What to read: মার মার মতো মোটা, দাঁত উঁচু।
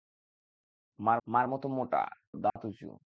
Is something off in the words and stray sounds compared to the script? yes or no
yes